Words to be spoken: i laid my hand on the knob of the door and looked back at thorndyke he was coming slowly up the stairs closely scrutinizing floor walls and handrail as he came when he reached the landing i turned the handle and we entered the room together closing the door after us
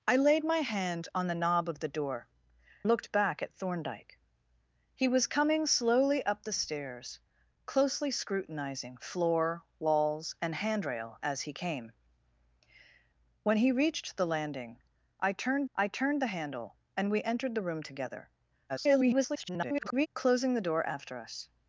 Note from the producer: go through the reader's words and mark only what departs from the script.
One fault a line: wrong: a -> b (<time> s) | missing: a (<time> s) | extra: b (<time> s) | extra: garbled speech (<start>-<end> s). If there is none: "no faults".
missing: and (2.3 s)
extra: i turned (15.7 s)
extra: garbled speech (18.7-20.1 s)